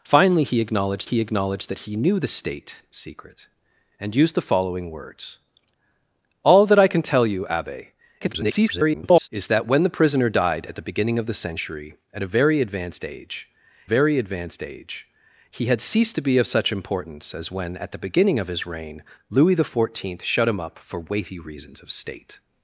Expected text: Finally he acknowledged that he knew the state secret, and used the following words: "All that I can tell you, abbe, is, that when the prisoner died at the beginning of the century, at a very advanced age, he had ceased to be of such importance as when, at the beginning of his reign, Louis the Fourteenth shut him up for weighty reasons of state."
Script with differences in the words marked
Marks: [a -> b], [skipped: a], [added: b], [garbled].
Finally he acknowledged [added: he acknowledged] that he knew the state secret, and used the following words: "All that I can tell you, abbe, [garbled] is, that when the prisoner died at the beginning of the century, at a very advanced age, [added: very advanced age] he had ceased to be of such importance as when, at the beginning of his reign, Louis the Fourteenth shut him up for weighty reasons of state."